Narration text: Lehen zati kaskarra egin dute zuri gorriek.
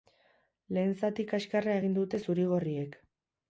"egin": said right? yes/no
yes